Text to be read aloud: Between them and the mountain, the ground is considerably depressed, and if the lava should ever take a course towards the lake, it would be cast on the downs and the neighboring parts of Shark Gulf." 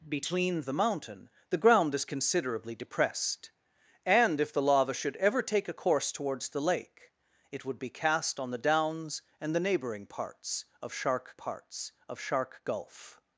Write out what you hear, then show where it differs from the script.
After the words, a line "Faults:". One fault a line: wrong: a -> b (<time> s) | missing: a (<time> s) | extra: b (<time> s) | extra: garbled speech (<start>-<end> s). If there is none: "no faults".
Between the mountain, the ground is considerably depressed, and if the lava should ever take a course towards the lake, it would be cast on the downs and the neighboring parts of Shark parts of Shark Gulf."
Faults:
missing: them and (0.6 s)
extra: parts of Shark (11.3 s)